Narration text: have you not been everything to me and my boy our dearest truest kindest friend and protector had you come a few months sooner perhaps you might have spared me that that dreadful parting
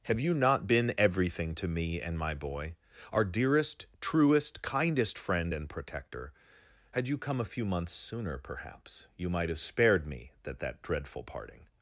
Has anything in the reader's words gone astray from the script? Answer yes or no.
no